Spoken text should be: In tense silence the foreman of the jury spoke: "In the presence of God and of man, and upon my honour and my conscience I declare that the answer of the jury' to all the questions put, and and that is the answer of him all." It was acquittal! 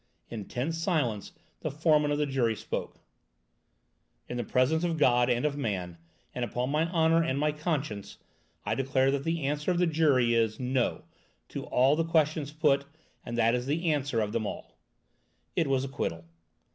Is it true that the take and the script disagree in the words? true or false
true